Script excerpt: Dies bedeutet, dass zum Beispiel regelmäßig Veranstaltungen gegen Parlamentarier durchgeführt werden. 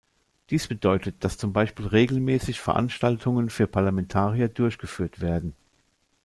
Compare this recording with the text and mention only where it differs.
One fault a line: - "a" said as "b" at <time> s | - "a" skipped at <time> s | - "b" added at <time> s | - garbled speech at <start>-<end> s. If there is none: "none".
- "gegen" said as "für" at 3.5 s